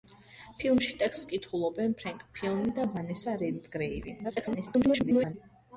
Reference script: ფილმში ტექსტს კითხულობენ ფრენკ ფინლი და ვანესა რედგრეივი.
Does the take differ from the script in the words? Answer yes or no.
yes